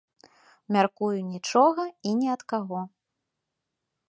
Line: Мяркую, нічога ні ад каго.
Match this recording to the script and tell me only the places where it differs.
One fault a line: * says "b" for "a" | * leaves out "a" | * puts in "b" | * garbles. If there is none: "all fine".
* puts in "і"